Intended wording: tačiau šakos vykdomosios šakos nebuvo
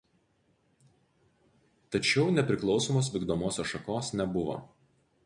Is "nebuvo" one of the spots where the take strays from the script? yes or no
no